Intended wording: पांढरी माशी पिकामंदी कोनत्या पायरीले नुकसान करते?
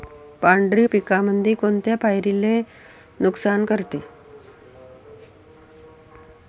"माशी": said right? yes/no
no